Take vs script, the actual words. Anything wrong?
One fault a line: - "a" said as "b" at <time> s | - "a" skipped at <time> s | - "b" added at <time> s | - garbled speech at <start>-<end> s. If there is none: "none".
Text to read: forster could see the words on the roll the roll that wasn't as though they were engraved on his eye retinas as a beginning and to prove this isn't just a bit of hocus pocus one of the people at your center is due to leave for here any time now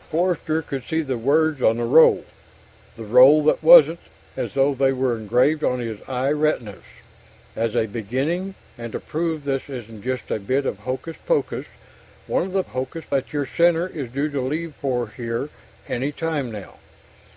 - "people" said as "hocus" at 12.7 s